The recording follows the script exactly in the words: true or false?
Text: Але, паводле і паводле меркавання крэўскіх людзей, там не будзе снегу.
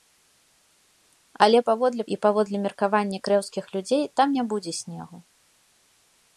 true